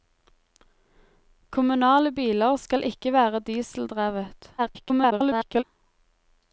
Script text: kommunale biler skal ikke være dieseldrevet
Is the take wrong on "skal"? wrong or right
right